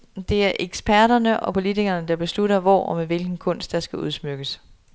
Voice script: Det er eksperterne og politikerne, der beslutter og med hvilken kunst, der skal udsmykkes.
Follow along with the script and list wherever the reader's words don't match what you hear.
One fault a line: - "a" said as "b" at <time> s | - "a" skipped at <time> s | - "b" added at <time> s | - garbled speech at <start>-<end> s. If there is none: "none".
- "hvor" added at 2.6 s